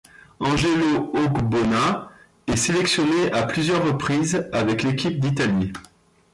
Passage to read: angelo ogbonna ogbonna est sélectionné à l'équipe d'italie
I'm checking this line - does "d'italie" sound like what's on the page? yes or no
yes